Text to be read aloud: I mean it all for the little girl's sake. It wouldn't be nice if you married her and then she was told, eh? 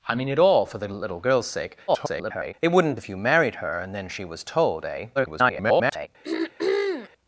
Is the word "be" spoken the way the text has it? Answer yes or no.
no